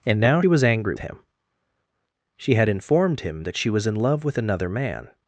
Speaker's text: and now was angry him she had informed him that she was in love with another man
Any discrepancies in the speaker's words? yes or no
no